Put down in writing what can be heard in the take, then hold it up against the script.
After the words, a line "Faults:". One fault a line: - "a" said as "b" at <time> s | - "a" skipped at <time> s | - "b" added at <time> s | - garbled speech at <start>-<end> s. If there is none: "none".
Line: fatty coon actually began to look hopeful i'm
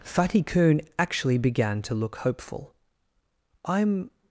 fatty coon actually began to look hopeful i'm
Faults:
none